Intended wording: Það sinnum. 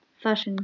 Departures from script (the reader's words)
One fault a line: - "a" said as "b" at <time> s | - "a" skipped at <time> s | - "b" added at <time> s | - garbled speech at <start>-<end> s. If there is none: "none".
none